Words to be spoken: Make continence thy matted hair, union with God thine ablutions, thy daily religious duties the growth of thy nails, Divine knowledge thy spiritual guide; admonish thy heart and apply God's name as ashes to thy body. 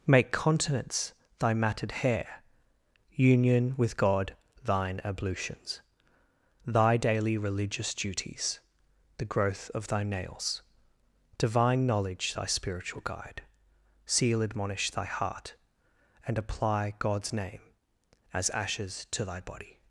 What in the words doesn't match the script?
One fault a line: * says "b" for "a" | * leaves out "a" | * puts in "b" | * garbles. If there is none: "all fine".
* puts in "seal"